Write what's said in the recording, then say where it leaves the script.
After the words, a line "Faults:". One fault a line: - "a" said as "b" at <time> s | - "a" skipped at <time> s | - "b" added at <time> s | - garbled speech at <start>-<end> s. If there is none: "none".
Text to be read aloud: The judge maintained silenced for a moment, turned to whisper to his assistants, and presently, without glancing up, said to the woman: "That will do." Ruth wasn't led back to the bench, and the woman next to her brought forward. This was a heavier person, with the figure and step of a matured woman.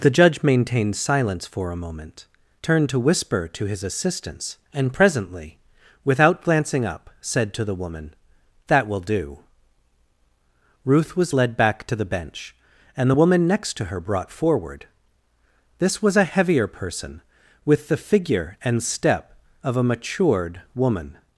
The judge maintained silence for a moment, turned to whisper to his assistants, and presently, without glancing up, said to the woman: "That will do." Ruth was led back to the bench, and the woman next to her brought forward. This was a heavier person, with the figure and step of a matured woman.
Faults:
- "silenced" said as "silence" at 0.9 s
- "wasn't" said as "was" at 11.2 s